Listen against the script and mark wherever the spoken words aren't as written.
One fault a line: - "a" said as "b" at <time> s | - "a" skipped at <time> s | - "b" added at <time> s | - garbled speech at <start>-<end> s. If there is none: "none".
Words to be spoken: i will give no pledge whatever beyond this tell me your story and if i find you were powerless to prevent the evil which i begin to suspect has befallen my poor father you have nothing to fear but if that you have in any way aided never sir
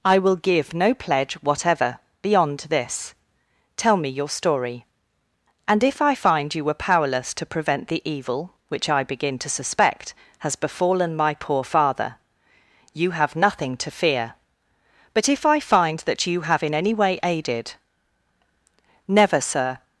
- "i find" added at 15.4 s